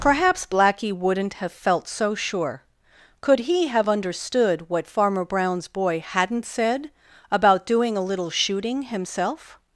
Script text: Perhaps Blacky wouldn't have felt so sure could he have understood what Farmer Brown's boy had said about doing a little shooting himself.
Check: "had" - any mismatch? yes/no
yes